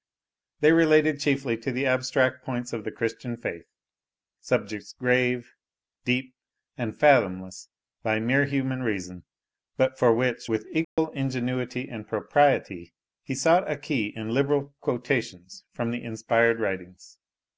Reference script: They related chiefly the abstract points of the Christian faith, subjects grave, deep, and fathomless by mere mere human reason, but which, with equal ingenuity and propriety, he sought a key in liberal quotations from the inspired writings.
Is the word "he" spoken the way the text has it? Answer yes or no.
yes